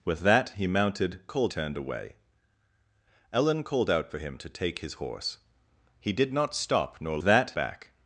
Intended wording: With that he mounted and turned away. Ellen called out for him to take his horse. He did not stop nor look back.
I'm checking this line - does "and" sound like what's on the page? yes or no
no